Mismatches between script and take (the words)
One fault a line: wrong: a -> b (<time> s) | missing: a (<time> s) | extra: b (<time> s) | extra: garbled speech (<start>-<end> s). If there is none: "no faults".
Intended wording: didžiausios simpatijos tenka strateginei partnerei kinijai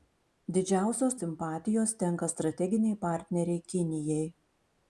no faults